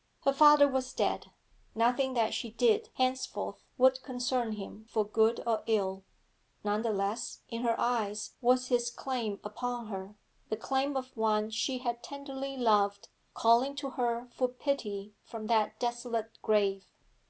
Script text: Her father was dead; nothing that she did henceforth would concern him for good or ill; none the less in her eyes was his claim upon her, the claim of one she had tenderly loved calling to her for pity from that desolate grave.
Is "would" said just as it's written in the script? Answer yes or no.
yes